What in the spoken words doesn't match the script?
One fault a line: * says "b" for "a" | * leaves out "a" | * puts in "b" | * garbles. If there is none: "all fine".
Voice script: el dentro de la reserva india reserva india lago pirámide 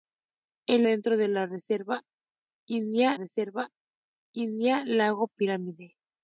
all fine